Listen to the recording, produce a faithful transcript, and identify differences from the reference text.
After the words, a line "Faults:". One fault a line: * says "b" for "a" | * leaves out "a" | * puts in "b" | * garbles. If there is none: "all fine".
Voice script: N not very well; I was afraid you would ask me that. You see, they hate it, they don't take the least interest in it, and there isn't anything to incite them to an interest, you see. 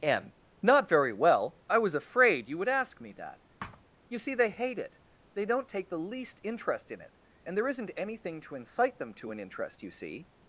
N not very well; I was afraid you would ask me that. You see, they hate it, they don't take the least interest in it, and there isn't anything to incite them to an interest, you see.
Faults:
all fine